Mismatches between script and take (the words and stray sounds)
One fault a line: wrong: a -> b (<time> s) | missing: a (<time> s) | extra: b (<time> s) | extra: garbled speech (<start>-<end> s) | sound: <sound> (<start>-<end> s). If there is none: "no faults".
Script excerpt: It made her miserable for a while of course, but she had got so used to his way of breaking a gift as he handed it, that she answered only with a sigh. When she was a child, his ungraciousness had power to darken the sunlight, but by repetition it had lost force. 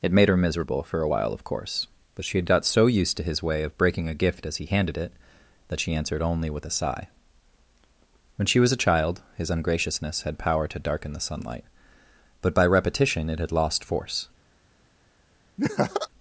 sound: laugh (15.6-16.1 s)